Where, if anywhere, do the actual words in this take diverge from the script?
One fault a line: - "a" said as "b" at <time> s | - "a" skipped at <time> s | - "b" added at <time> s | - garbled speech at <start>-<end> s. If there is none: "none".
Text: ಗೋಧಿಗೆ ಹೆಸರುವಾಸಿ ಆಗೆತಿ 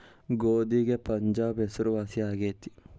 - "ಪಂಜಾಬ್" added at 1.1 s